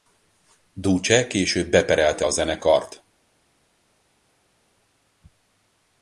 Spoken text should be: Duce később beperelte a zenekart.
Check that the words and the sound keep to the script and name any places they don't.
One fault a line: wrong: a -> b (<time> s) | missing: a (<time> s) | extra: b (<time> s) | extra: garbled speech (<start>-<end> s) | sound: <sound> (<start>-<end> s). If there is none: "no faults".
no faults